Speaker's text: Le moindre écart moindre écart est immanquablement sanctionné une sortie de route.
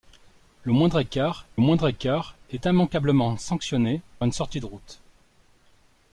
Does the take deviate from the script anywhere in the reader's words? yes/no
no